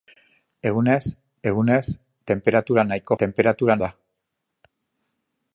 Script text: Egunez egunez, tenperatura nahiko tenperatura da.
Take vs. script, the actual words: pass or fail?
pass